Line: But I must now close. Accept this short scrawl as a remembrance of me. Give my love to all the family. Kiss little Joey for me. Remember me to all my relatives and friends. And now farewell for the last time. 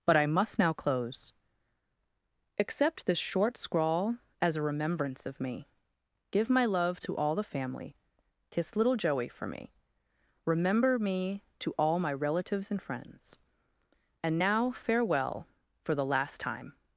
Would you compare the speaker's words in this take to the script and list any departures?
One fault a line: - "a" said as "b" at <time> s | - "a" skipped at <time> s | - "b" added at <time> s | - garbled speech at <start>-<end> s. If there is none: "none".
none